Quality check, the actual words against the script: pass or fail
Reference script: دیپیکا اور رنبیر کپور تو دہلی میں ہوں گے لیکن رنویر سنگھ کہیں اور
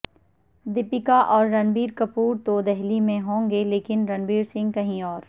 pass